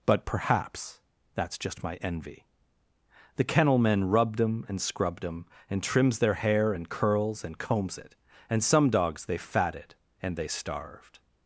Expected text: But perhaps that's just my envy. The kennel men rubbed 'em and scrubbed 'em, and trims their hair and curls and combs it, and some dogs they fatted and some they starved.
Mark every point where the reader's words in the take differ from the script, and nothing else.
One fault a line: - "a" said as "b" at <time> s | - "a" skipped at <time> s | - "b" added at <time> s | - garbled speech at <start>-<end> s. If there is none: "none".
- "some" skipped at 10.4 s